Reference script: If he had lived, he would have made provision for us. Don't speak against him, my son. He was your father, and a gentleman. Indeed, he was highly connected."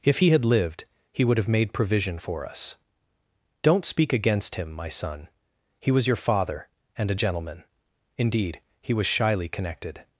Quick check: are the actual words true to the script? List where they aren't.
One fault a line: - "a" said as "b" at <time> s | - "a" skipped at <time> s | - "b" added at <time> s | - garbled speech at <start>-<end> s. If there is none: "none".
- "highly" said as "shyly" at 9.1 s